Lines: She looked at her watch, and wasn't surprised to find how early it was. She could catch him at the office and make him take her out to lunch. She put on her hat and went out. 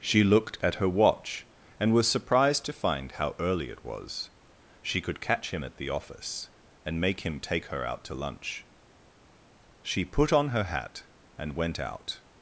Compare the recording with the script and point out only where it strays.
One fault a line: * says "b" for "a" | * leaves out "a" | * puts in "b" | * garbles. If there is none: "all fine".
* says "was" for "wasn't"